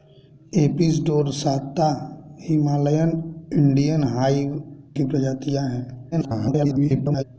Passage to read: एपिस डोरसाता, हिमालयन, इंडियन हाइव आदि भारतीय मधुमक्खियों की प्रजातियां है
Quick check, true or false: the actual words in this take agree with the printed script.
false